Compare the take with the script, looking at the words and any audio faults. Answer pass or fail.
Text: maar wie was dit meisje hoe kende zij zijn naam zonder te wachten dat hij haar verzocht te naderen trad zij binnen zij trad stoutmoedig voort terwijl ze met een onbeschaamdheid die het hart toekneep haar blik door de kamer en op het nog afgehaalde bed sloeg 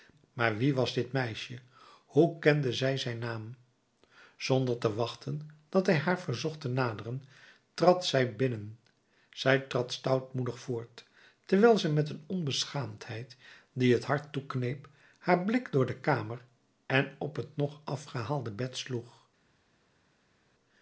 pass